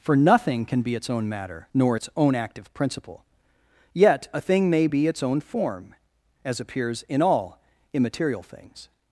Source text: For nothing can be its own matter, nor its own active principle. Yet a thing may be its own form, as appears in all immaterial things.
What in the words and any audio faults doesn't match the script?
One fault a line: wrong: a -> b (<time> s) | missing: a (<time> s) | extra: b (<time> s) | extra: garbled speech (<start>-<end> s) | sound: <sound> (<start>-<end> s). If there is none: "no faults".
no faults